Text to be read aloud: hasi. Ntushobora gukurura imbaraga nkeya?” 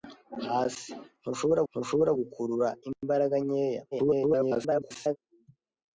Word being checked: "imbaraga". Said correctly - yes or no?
yes